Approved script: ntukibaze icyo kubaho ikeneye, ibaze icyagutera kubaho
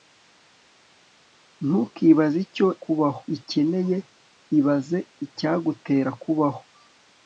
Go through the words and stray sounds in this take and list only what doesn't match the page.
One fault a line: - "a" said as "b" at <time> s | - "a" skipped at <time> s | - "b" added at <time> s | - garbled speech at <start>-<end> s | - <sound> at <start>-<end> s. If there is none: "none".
none